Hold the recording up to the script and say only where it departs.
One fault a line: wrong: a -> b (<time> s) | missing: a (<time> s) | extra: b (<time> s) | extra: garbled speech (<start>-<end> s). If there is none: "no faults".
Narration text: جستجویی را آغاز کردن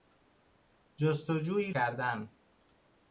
missing: را آغاز (1.7 s)